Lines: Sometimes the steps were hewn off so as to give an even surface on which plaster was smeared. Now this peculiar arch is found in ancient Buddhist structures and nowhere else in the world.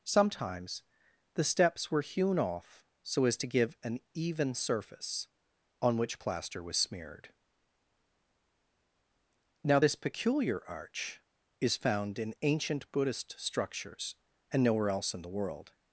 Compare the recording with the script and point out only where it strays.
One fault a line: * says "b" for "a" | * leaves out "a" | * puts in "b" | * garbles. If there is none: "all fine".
all fine